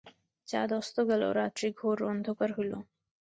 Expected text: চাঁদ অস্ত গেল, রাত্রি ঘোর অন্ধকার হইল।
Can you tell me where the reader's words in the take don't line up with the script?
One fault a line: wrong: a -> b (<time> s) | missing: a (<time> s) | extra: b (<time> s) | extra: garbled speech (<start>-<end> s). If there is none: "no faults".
no faults